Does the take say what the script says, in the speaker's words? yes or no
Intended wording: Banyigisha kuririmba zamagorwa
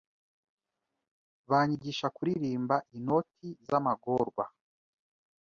no